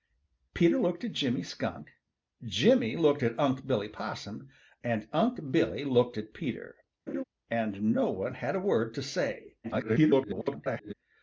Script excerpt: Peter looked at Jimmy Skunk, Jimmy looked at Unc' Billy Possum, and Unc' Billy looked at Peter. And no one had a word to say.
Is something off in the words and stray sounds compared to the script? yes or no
yes